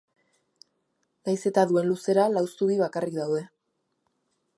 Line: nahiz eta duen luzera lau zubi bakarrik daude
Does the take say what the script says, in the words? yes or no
yes